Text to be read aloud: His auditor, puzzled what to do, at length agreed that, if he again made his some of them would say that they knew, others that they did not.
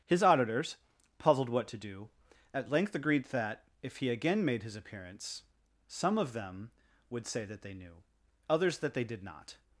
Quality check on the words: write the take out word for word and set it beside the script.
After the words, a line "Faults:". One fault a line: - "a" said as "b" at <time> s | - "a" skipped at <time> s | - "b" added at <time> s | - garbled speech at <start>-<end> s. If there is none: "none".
His auditors, puzzled what to do, at length agreed that, if he again made his appearance, some of them would say that they knew, others that they did not.
Faults:
- "auditor" said as "auditors" at 0.2 s
- "appearance" added at 4.8 s